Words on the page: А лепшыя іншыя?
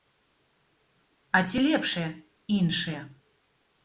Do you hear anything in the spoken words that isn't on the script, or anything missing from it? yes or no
yes